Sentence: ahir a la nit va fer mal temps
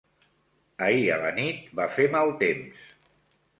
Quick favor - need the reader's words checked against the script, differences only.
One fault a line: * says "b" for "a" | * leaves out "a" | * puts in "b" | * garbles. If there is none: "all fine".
all fine